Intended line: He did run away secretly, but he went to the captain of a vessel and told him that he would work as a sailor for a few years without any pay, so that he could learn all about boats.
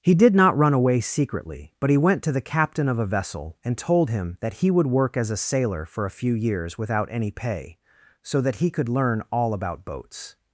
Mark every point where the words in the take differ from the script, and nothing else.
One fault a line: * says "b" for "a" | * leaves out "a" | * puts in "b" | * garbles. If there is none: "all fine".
* puts in "not"